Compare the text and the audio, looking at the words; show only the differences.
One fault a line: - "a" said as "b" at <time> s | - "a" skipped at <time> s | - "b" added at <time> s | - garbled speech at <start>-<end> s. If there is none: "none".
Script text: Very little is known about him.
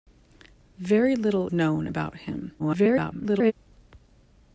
- "is" skipped at 1.5 s
- garbled speech at 2.6-3.5 s